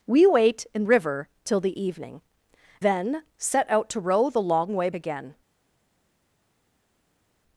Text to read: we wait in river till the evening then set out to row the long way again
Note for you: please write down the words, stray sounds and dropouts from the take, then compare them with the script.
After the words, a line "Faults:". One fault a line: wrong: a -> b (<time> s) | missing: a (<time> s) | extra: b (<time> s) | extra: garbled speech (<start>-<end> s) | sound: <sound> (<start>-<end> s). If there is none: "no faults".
we wait in river till the evening then set out to row the long way again
Faults:
no faults